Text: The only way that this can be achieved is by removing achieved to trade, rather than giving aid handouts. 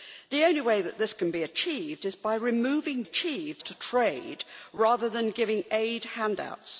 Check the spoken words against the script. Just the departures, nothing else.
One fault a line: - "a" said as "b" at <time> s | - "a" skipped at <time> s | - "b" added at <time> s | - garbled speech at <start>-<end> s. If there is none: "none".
none